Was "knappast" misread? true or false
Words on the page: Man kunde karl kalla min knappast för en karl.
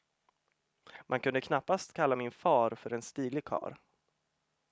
true